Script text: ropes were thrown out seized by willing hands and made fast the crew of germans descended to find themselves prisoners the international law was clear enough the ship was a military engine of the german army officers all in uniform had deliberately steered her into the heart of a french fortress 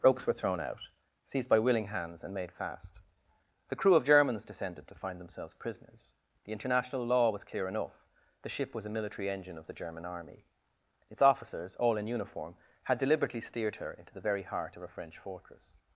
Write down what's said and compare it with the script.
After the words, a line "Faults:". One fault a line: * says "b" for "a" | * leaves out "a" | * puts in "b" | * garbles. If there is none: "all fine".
ropes were thrown out seized by willing hands and made fast the crew of germans descended to find themselves prisoners the international law was clear enough the ship was a military engine of the german army its officers all in uniform had deliberately steered her into the very heart of a french fortress
Faults:
* puts in "its"
* puts in "very"